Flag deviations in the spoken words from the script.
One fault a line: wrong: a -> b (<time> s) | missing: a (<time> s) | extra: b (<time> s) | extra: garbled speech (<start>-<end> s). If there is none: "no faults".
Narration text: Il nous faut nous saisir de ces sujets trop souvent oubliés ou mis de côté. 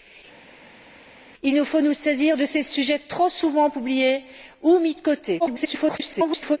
extra: garbled speech (5.4-6.6 s)